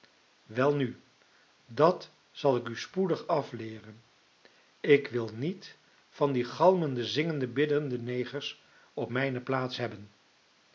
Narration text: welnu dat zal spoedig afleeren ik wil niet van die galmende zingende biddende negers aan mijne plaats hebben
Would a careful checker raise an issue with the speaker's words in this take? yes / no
yes